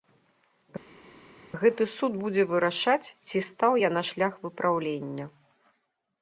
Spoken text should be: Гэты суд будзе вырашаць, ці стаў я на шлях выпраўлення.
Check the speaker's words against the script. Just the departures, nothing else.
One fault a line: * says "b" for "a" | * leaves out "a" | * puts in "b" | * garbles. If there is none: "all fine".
all fine